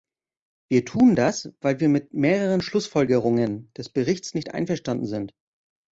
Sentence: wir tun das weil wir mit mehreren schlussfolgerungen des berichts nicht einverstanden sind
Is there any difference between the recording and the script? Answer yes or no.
no